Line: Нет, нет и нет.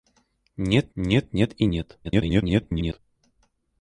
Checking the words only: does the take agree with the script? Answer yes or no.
no